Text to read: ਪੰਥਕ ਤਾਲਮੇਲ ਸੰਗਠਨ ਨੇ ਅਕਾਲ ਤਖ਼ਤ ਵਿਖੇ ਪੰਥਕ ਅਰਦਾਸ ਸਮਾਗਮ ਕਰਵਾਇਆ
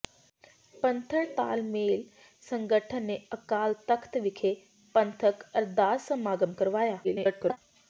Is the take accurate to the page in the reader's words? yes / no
no